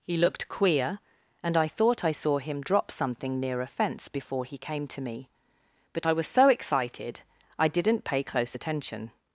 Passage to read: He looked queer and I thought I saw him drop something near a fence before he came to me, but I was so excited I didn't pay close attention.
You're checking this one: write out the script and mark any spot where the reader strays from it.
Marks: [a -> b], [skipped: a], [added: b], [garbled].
He looked queer and I thought I saw him drop something near a fence before he came to me, but I was so excited I didn't pay close attention.